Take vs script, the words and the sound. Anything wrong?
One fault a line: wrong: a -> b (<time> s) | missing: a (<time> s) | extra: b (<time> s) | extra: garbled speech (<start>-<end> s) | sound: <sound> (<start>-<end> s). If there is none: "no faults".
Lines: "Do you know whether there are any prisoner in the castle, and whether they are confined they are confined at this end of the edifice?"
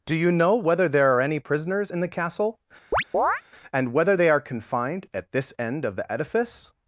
wrong: prisoner -> prisoners (1.4 s)
sound: chirp (2.9-3.4 s)
missing: they are confined (5.1 s)